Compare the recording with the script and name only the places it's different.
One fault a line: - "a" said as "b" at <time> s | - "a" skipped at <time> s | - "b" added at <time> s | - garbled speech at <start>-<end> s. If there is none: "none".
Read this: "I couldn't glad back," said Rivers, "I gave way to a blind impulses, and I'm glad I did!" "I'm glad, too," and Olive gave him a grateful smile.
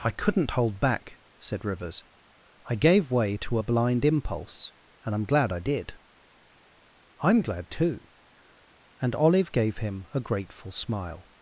- "glad" said as "hold" at 0.5 s
- "impulses" said as "impulse" at 4.1 s